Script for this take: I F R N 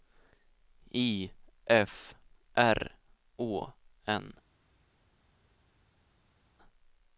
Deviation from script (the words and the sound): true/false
true